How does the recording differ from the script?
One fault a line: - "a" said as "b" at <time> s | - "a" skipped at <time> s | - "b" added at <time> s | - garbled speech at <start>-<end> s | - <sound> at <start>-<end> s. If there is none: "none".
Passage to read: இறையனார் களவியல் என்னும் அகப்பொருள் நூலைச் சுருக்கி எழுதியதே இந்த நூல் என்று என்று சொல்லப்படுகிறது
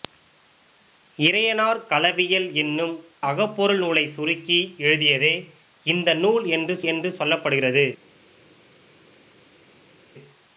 none